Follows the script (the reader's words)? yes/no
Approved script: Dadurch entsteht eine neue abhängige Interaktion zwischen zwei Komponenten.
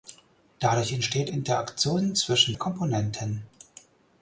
no